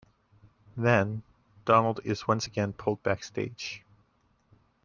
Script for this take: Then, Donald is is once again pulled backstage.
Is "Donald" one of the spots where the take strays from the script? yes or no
no